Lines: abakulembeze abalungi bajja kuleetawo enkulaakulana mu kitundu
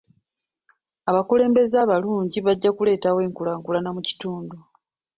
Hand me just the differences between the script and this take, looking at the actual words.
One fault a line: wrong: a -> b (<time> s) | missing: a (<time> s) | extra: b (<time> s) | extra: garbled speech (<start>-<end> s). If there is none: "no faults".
no faults